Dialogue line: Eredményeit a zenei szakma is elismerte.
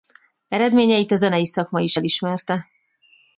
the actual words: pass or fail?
pass